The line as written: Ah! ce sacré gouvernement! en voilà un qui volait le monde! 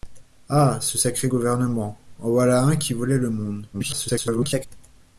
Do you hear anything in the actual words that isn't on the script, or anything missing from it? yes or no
yes